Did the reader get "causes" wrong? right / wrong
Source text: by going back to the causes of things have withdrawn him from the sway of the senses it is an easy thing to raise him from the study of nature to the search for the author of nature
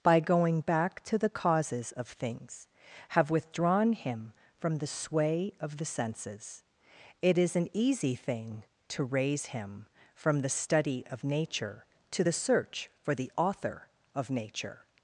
right